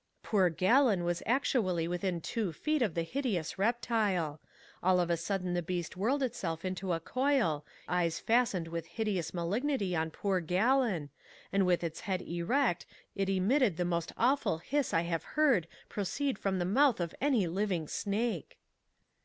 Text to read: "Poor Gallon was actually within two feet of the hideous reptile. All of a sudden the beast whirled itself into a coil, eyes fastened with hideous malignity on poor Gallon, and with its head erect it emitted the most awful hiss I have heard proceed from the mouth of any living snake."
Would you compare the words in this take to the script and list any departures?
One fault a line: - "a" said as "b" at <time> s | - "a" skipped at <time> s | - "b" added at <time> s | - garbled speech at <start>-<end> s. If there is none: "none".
none